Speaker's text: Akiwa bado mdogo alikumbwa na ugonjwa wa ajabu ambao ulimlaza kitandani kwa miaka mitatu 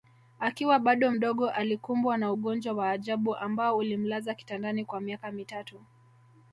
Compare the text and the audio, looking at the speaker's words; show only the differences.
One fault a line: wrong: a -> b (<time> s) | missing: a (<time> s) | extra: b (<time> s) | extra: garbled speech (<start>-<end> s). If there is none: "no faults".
no faults